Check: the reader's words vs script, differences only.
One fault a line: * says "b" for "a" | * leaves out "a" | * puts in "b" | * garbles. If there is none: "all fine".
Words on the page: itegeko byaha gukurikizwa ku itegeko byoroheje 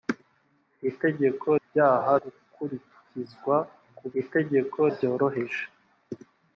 all fine